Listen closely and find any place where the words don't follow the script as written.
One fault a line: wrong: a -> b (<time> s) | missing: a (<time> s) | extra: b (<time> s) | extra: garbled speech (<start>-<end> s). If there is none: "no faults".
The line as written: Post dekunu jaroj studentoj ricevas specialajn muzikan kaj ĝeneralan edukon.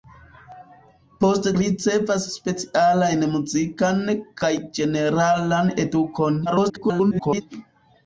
missing: dekunu jaroj studentoj (1.5 s)
extra: garbled speech (6.5-7.4 s)